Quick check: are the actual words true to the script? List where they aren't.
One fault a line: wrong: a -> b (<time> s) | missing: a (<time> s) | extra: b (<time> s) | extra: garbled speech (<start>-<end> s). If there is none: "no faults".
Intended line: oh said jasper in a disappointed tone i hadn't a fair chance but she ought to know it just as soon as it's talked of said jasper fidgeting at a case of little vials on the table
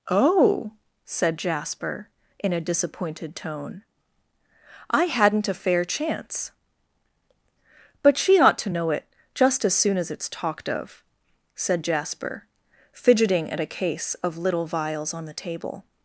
no faults